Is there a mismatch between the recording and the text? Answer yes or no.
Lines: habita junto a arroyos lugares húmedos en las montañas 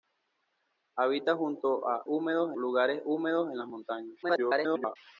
yes